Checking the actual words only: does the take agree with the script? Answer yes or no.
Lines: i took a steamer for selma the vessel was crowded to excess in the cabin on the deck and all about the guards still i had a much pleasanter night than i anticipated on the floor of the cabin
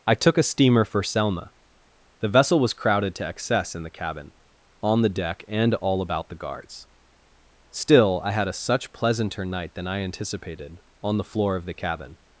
no